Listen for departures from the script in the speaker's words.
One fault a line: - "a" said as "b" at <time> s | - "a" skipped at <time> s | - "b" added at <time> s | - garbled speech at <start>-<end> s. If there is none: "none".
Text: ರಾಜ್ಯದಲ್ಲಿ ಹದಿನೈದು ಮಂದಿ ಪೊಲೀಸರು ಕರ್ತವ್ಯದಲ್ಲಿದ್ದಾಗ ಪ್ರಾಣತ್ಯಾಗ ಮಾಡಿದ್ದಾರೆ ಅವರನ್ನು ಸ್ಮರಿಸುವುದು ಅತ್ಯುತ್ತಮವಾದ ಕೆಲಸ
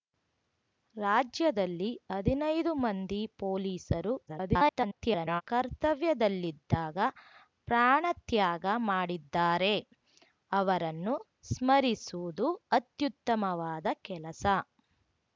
- garbled speech at 4.3-5.4 s